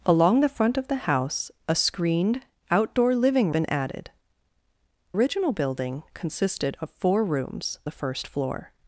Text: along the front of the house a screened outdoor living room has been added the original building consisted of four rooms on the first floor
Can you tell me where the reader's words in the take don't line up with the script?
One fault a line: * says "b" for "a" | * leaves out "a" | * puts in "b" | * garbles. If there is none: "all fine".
* leaves out "room has"
* leaves out "the"
* leaves out "on"